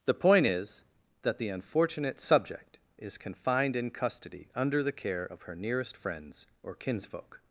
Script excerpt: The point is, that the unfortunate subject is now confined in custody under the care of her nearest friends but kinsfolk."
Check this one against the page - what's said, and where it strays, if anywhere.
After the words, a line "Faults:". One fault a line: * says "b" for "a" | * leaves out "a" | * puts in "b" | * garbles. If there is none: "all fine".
The point is, that the unfortunate subject is confined in custody under the care of her nearest friends or kinsfolk."
Faults:
* leaves out "now"
* says "or" for "but"